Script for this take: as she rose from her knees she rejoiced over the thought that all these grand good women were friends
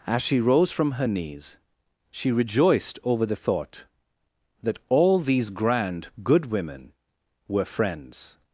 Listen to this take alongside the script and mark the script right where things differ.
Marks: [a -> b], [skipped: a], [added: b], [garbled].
as she rose from her knees she rejoiced over the thought that all these grand good women were friends